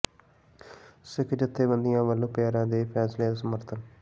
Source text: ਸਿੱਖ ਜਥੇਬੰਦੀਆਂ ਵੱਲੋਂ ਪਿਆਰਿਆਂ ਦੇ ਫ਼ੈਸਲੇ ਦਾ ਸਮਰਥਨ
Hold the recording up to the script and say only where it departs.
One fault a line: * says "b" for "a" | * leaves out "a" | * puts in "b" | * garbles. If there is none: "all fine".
all fine